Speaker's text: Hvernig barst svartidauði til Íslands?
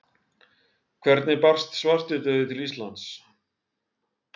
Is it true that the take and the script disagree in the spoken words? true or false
false